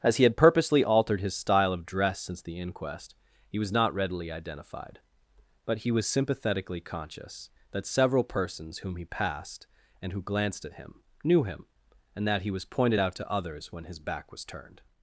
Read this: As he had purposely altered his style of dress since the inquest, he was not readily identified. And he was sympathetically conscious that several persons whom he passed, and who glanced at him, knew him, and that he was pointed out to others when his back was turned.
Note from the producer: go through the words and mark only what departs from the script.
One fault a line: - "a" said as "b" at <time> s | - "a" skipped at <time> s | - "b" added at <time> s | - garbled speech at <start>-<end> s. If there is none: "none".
- "And" said as "But" at 5.7 s